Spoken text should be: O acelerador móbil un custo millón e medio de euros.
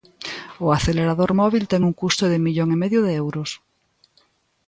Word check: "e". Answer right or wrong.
right